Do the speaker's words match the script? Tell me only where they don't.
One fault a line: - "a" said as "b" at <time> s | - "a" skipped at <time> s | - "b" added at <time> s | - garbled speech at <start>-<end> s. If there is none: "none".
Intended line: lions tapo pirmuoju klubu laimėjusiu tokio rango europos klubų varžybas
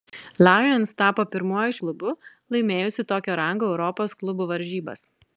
none